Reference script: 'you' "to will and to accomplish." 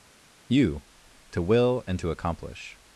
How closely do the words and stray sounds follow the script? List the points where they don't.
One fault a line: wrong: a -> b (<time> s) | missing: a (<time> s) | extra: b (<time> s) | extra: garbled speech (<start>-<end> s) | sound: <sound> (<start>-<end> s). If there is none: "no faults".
no faults